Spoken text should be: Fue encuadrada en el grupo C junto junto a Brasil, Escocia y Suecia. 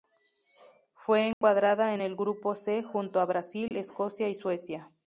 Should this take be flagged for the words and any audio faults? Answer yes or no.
yes